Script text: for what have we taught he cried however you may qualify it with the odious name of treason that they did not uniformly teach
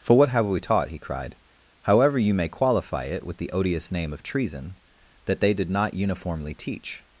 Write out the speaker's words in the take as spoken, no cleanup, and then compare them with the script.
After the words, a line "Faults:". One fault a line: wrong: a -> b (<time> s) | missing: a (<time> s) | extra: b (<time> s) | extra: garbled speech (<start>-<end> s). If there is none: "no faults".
for what have we taught he cried however you may qualify it with the odious name of treason that they did not uniformly teach
Faults:
no faults